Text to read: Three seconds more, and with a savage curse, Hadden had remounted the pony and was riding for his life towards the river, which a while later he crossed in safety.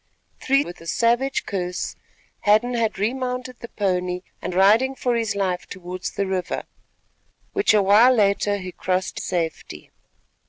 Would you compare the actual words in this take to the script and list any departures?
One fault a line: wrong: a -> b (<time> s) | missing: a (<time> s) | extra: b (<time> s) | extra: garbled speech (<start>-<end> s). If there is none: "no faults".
missing: seconds more and (0.6 s)
missing: was (4.5 s)
missing: in (9.2 s)